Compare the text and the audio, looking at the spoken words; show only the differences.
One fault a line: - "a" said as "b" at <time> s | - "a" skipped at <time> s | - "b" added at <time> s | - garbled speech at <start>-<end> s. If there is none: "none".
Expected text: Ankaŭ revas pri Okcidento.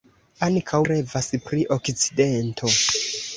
none